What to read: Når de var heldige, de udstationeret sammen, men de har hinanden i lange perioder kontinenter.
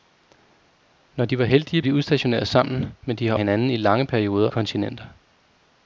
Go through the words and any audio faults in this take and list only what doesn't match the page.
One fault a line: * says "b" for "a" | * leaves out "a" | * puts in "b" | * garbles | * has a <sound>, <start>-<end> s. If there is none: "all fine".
all fine